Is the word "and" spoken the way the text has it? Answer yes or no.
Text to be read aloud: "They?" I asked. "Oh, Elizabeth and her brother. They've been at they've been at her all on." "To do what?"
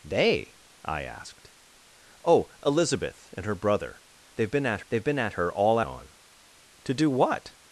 yes